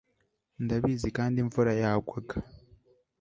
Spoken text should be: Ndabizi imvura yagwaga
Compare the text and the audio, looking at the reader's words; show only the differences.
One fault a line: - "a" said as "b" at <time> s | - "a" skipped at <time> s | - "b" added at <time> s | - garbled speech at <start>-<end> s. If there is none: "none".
- "kandi" added at 1.2 s